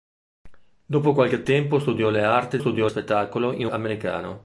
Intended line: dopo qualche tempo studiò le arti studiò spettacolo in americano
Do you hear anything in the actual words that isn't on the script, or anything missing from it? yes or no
no